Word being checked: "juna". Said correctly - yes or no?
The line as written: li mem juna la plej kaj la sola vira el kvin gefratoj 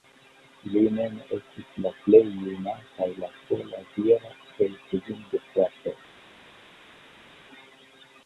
no